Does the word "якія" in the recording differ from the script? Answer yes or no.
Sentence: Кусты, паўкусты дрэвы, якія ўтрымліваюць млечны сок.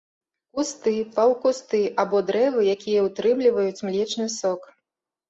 no